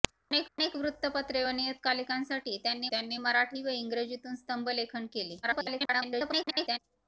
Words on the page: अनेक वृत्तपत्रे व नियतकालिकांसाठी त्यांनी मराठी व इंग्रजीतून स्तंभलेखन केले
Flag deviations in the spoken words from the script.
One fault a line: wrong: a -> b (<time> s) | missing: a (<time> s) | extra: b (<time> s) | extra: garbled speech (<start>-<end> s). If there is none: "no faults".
extra: अनेक (0.5 s)
extra: त्यांनी (2.9 s)
extra: garbled speech (5.4-6.8 s)